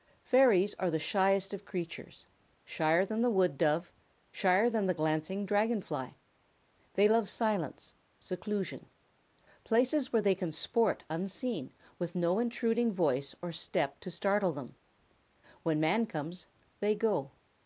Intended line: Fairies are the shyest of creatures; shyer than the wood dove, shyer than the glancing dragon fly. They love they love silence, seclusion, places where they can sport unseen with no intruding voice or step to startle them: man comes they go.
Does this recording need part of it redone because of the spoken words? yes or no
yes